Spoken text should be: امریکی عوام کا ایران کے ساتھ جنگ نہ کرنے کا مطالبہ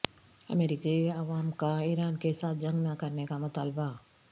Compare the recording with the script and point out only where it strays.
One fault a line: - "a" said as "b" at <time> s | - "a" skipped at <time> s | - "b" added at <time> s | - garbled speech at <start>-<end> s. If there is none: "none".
none